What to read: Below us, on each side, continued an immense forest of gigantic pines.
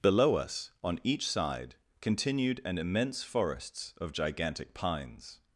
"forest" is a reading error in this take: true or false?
true